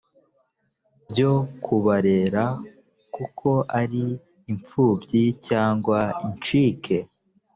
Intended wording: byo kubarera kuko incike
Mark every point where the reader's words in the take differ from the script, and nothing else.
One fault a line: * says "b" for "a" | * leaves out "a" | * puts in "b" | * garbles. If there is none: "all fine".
* puts in "ari imfubyi cyangwa"